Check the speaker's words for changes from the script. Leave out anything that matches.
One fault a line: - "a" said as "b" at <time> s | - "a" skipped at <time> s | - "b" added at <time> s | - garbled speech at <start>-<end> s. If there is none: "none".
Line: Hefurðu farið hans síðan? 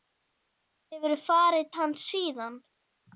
none